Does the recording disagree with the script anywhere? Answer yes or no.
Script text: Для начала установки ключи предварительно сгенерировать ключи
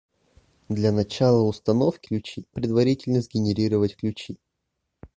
no